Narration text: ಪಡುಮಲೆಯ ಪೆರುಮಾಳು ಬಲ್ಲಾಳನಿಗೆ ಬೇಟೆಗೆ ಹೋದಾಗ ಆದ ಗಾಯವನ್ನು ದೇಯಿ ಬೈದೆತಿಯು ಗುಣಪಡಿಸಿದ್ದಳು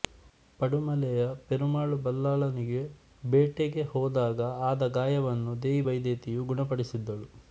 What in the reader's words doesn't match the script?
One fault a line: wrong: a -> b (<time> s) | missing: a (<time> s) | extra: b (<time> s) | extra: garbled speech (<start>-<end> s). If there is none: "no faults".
no faults